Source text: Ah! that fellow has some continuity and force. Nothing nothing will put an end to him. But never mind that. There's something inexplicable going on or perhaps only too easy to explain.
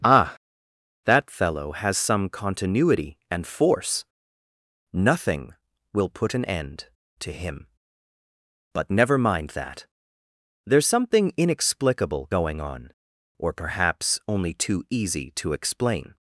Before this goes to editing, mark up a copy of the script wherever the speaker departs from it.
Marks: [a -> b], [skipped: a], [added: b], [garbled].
Ah! that fellow has some continuity and force. Nothing [skipped: nothing] will put an end to him. But never mind that. There's something inexplicable going on or perhaps only too easy to explain.